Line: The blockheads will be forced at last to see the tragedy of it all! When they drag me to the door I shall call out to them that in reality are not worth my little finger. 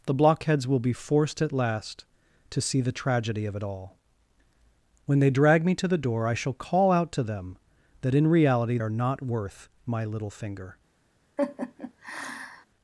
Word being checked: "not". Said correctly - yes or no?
yes